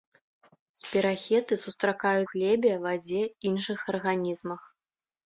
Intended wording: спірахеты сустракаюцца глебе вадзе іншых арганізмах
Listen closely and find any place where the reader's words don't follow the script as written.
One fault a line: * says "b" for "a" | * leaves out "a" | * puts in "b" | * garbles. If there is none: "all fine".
all fine